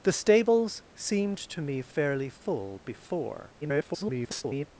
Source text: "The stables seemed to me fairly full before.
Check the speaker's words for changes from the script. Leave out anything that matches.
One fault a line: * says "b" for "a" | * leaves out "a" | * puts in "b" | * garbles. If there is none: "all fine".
* garbles